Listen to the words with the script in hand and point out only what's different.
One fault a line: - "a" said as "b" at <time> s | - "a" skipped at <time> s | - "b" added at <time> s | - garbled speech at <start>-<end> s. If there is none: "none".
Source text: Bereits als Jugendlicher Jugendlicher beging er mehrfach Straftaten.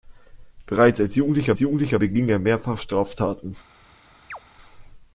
none